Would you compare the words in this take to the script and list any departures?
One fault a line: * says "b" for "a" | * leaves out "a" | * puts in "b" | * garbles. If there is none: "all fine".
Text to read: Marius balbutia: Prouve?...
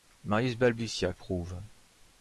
all fine